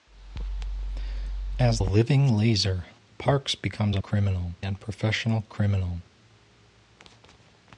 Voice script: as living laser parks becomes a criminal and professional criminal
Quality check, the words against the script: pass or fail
pass